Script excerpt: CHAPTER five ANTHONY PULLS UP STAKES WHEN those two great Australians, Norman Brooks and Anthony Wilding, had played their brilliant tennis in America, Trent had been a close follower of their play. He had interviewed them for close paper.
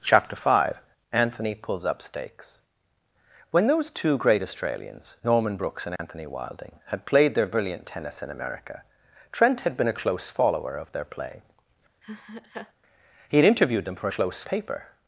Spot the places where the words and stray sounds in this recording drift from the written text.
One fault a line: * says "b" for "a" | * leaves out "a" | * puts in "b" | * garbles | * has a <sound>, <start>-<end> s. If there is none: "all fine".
* has a dropout, 6.0-6.0 s
* has a laugh, 12.0-12.7 s